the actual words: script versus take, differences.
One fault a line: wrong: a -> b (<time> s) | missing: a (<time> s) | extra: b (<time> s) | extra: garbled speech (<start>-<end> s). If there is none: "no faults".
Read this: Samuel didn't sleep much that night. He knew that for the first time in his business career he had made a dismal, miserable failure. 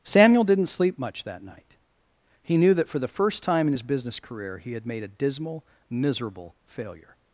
no faults